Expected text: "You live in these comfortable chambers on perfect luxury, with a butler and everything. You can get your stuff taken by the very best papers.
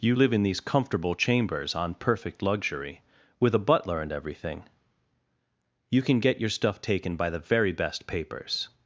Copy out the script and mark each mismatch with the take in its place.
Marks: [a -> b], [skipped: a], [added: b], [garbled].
"You live in these comfortable chambers on perfect luxury, with a butler and everything. You can get your stuff taken by the very best papers.